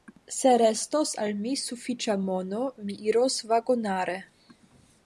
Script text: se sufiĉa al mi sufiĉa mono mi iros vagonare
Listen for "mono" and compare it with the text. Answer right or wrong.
right